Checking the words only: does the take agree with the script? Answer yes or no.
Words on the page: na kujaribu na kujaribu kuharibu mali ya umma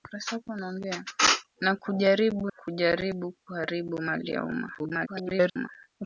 no